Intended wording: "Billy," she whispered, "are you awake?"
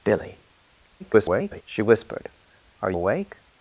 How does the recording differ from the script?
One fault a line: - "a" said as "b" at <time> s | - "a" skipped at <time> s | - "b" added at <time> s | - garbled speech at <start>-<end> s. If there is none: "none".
- garbled speech at 1.0-1.6 s
- "you" skipped at 2.9 s